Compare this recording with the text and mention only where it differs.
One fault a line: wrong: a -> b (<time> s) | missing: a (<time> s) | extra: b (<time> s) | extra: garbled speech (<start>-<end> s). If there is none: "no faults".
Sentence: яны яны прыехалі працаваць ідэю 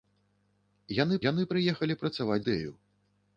no faults